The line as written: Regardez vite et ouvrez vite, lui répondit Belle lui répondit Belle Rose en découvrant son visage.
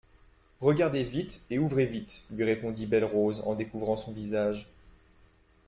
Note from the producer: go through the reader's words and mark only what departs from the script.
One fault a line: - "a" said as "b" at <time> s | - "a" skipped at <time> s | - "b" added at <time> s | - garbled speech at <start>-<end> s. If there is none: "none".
- "lui répondit Belle" skipped at 3.0 s